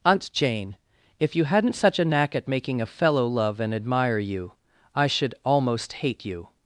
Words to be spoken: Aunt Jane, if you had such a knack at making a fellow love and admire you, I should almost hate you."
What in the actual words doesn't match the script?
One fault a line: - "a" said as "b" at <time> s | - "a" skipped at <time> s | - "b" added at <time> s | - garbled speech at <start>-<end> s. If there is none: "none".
- "had" said as "hadn't" at 1.4 s